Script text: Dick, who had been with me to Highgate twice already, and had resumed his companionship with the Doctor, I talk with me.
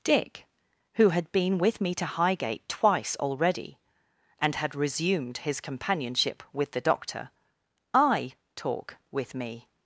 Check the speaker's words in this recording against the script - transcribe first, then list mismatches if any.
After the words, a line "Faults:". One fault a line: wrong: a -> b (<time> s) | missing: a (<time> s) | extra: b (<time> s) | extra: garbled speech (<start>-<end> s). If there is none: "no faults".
Dick, who had been with me to Highgate twice already, and had resumed his companionship with the Doctor, I talk with me.
Faults:
no faults